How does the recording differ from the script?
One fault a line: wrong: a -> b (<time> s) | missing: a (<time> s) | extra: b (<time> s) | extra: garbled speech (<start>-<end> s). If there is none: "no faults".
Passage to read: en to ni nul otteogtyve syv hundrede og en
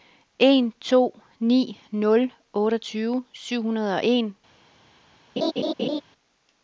no faults